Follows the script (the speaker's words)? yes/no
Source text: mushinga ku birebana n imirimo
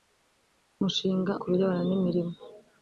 yes